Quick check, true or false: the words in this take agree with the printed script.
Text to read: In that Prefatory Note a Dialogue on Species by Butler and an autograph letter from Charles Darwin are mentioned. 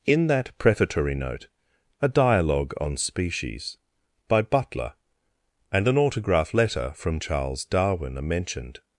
true